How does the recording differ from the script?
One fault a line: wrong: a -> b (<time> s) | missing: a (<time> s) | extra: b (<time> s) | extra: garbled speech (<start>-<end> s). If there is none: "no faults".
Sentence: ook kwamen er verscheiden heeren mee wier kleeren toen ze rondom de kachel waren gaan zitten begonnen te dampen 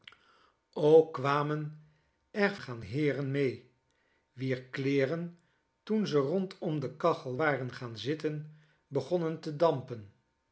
wrong: verscheiden -> gaan (2.6 s)